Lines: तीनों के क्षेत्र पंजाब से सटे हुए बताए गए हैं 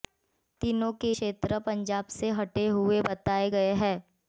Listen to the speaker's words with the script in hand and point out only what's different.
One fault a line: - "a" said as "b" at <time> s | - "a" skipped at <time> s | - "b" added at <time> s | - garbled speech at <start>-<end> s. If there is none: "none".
none